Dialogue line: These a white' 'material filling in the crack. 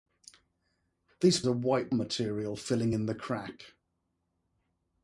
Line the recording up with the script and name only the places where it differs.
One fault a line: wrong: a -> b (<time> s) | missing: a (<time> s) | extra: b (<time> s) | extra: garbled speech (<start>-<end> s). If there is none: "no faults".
no faults